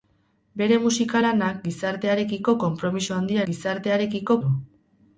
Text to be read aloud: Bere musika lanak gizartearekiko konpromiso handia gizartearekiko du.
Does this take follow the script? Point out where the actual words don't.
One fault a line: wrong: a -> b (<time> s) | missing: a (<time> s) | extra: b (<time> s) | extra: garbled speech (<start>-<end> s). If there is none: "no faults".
no faults